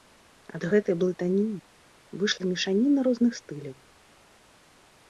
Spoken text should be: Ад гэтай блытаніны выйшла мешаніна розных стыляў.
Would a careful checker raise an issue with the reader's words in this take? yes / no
no